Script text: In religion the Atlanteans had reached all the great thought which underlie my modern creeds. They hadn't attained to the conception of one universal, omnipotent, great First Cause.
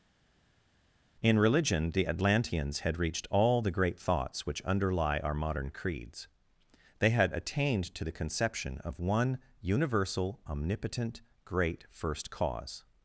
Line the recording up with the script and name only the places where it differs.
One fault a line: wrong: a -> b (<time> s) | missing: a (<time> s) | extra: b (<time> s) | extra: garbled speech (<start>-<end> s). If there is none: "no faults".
wrong: thought -> thoughts (4.0 s)
wrong: my -> our (5.2 s)
wrong: hadn't -> had (7.1 s)